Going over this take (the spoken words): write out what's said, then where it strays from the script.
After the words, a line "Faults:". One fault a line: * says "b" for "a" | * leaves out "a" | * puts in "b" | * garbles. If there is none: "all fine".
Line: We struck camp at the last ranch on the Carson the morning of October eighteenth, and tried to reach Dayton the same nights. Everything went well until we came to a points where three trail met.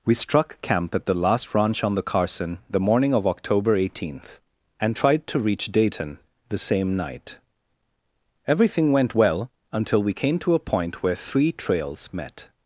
We struck camp at the last ranch on the Carson the morning of October eighteenth, and tried to reach Dayton the same night. Everything went well until we came to a point where three trails met.
Faults:
* says "night" for "nights"
* says "point" for "points"
* says "trails" for "trail"